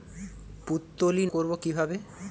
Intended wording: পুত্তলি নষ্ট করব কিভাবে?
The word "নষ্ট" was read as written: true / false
false